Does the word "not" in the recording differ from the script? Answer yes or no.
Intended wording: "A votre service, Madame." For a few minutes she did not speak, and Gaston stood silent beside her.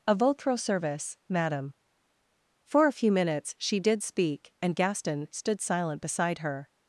yes